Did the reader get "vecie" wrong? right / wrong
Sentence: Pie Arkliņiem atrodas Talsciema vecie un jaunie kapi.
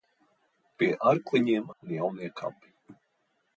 wrong